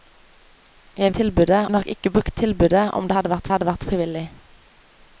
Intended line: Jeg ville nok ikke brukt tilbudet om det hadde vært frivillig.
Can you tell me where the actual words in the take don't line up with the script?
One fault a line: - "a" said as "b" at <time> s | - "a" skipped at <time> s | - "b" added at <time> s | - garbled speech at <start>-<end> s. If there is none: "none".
- "ville" said as "tilbudet" at 1.1 s
- "hadde vært" added at 3.5 s